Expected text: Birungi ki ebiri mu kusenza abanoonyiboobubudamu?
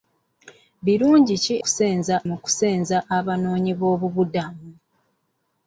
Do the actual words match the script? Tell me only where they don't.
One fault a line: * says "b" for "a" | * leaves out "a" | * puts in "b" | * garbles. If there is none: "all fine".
* says "kusenza" for "ebiri"